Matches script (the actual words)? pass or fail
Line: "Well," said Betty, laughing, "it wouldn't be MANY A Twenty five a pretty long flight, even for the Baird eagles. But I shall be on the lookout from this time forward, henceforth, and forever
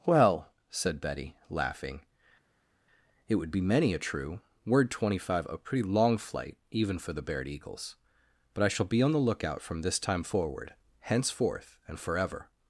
fail